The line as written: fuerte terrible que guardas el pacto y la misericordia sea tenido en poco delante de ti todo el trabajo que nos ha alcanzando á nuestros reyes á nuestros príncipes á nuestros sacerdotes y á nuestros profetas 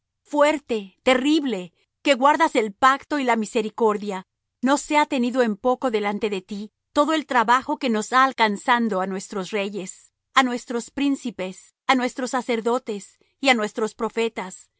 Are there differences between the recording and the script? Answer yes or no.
yes